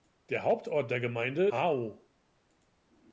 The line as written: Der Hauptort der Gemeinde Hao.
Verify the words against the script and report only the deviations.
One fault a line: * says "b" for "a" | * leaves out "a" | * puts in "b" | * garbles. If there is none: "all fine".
all fine